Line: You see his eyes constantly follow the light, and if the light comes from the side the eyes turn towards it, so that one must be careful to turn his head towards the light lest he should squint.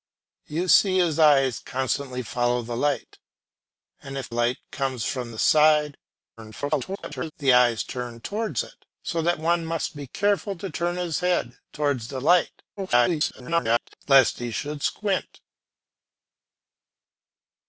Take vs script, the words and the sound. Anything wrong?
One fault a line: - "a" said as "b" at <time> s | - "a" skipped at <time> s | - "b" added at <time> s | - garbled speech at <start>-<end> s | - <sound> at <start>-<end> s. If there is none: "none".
- "the" skipped at 4.3 s
- garbled speech at 6.4-7.3 s
- garbled speech at 12.8-14.0 s